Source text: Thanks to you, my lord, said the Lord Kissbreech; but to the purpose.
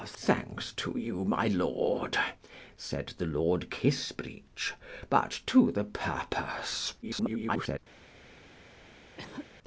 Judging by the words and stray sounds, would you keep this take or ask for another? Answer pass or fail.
fail